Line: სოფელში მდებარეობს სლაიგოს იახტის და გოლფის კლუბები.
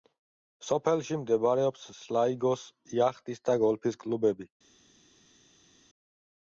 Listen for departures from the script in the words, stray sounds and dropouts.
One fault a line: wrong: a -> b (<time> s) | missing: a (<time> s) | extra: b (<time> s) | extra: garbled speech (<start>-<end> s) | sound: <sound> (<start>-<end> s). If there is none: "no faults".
no faults